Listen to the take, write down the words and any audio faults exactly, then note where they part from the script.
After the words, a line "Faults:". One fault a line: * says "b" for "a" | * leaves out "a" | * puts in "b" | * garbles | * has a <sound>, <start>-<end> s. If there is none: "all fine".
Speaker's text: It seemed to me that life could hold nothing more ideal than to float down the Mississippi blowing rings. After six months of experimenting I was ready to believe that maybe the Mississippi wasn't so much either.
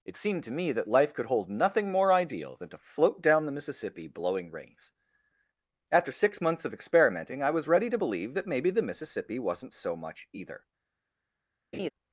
It seemed to me that life could hold nothing more ideal than to float down the Mississippi blowing rings. After six months of experimenting I was ready to believe that maybe the Mississippi wasn't so much either.
Faults:
* has a laugh, 11.7-11.9 s